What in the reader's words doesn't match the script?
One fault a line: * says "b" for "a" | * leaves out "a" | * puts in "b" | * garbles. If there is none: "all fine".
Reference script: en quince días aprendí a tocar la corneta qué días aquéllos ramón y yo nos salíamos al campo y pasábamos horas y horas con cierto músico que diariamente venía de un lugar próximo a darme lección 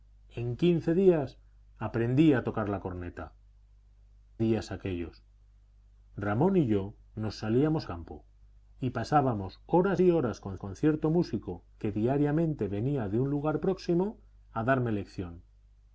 * leaves out "qué"
* leaves out "al"
* puts in "con"